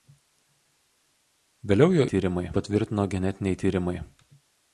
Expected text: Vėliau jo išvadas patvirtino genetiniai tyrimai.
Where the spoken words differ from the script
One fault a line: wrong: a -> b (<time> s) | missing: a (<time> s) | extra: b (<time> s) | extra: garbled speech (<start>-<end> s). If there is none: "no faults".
wrong: išvadas -> tyrimai (2.1 s)